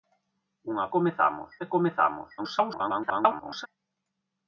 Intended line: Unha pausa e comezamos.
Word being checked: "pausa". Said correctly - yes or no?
no